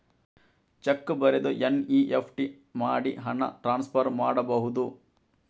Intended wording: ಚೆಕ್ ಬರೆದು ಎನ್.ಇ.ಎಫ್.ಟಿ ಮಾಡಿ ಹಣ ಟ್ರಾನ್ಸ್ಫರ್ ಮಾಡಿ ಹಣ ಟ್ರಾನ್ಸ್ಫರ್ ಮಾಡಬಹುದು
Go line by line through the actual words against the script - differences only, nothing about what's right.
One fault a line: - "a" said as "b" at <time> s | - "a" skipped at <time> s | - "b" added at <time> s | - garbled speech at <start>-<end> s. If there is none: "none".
- "ಮಾಡಿ ಹಣ ಟ್ರಾನ್ಸ್ಫರ್" skipped at 4.1 s